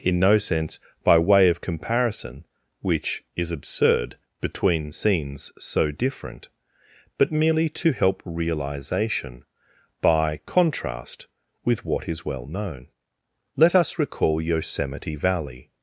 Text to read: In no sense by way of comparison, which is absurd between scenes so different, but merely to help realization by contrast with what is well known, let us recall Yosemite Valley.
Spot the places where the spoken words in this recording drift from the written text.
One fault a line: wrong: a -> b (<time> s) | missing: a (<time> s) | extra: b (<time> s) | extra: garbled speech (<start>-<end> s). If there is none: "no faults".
no faults